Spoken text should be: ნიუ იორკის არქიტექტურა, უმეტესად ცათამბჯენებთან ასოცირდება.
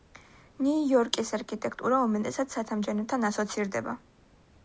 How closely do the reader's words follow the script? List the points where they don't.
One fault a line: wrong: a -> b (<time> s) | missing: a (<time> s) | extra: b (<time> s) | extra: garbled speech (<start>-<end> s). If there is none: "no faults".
no faults